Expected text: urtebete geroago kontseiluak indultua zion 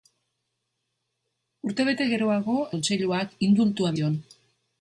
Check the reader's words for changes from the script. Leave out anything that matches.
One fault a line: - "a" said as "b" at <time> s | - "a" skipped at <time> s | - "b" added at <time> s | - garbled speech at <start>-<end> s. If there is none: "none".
none